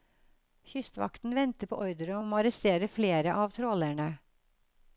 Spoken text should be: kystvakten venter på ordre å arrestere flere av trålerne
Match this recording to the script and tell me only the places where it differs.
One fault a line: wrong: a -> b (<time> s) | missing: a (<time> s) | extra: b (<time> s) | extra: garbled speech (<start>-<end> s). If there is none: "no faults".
extra: om (2.2 s)